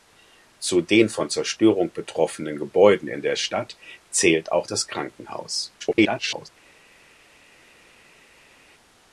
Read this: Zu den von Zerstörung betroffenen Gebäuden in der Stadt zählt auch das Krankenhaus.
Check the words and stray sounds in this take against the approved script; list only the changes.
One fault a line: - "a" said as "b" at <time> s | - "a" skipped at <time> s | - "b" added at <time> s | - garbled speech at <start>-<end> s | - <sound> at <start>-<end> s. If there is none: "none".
- garbled speech at 5.8-6.5 s